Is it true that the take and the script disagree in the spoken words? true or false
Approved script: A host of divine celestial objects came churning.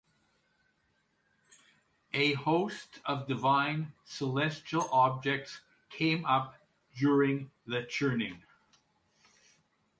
true